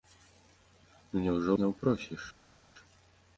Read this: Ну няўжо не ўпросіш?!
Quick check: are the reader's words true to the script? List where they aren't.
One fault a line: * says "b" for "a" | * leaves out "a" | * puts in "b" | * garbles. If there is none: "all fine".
all fine